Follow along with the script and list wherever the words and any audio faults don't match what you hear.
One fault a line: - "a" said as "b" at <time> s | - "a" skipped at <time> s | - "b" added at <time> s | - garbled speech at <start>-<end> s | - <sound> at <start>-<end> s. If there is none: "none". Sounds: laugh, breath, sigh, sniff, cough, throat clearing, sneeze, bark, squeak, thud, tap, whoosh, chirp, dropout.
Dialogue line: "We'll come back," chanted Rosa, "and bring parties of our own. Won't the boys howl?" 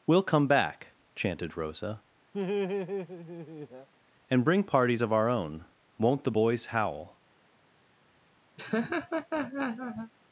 - laugh at 2.3-3.9 s
- laugh at 8.6-10.1 s